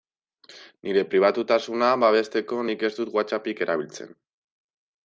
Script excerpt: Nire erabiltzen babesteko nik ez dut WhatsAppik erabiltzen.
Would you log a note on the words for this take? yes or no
yes